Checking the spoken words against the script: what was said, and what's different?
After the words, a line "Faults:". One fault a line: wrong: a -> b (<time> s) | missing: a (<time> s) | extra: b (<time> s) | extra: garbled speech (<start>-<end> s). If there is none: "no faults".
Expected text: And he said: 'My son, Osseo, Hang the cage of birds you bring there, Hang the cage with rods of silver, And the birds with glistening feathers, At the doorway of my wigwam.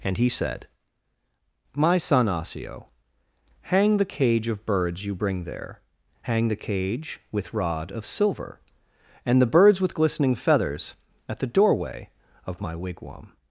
And he said: 'My son, Osseo, Hang the cage of birds you bring there, Hang the cage with rod of silver, And the birds with glistening feathers, At the doorway of my wigwam.
Faults:
wrong: rods -> rod (7.5 s)